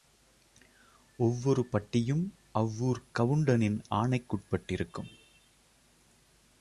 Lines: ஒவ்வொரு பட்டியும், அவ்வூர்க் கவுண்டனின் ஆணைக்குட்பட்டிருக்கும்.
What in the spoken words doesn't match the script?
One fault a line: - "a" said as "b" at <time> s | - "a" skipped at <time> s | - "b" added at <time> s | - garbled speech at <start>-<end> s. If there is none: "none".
none